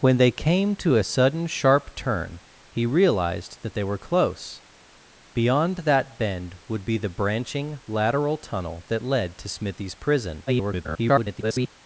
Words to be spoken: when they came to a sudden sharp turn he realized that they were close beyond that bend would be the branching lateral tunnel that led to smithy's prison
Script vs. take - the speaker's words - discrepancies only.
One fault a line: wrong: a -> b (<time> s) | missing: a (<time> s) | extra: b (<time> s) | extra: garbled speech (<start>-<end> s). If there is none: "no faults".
extra: garbled speech (10.5-11.7 s)